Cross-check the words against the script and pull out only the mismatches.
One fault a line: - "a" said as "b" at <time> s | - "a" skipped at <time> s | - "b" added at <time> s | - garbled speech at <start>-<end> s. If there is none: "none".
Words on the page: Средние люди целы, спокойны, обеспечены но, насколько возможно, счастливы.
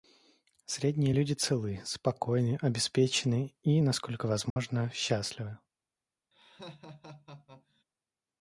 - "но" said as "и" at 3.6 s